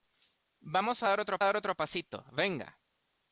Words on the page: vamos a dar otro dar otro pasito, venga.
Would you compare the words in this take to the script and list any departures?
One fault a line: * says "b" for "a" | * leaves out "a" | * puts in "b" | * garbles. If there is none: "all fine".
all fine